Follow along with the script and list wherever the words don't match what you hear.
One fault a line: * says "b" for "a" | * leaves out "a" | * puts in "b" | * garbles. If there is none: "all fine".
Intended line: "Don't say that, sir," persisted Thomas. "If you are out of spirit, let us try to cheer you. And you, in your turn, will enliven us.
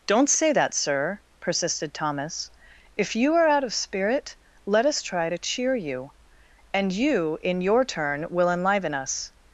all fine